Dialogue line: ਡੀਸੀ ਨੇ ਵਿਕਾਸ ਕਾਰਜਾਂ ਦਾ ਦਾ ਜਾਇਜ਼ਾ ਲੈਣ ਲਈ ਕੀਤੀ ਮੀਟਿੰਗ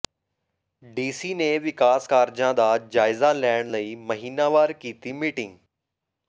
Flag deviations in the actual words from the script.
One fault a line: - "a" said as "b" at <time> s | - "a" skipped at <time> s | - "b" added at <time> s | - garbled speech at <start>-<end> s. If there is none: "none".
- "ਦਾ" skipped at 2.8 s
- "ਮਹੀਨਾਵਾਰ" added at 4.0 s